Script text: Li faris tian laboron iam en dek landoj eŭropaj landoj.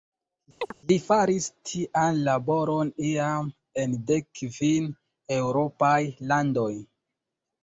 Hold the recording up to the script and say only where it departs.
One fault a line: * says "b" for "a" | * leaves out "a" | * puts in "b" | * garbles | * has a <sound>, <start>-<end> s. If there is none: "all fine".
* has a chirp, 0.6-0.7 s
* says "kvin" for "landoj"